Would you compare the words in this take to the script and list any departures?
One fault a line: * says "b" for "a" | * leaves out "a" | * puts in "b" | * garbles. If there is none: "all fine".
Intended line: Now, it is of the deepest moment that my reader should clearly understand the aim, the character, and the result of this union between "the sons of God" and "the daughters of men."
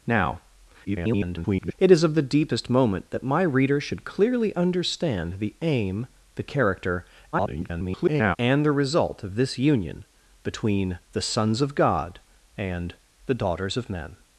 * garbles
* garbles